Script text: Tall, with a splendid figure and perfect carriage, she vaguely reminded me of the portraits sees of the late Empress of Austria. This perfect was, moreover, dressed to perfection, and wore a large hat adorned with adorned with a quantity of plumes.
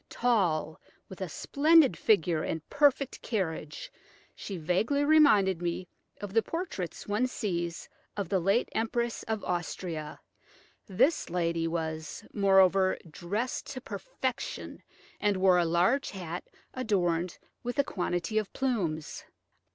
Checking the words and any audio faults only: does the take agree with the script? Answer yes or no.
no